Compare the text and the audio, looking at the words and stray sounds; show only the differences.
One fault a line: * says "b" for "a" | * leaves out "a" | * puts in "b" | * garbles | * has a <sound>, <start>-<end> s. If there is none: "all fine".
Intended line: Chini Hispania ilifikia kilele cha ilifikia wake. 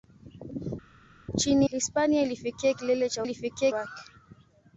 all fine